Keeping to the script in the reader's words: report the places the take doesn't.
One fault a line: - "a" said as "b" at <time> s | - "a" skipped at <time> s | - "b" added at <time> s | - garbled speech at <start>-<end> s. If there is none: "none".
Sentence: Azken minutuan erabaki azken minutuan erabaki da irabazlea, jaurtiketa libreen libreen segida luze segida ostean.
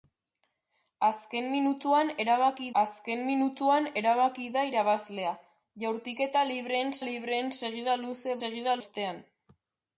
none